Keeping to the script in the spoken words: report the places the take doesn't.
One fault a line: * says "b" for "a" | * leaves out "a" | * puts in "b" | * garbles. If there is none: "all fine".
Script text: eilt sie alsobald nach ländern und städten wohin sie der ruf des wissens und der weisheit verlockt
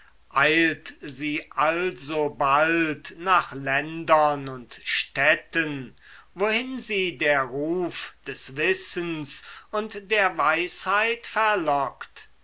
all fine